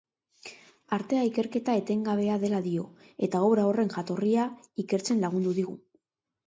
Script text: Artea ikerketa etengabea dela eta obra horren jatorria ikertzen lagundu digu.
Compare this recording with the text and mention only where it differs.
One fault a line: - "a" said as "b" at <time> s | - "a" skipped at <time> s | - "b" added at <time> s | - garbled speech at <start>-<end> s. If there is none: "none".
- "dio" added at 2.7 s